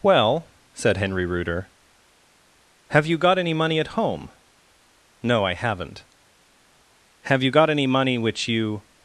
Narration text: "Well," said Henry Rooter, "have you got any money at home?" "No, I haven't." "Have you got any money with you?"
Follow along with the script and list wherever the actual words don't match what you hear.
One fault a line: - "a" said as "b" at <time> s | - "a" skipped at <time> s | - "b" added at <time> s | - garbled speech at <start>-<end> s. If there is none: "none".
- "with" said as "which" at 8.2 s